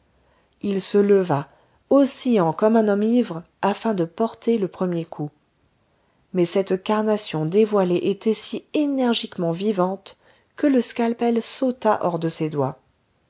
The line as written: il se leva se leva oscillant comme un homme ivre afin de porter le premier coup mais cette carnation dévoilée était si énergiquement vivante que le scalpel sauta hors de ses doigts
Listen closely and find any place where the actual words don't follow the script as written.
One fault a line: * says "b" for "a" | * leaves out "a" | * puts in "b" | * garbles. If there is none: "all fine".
* leaves out "se leva"